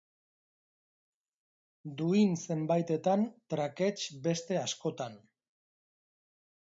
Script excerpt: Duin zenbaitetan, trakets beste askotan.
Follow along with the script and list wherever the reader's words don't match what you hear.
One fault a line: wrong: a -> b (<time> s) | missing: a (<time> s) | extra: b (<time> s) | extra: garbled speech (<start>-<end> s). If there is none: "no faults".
no faults